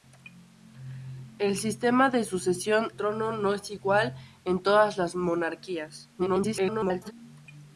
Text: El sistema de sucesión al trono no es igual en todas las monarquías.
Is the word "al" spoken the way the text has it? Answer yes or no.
no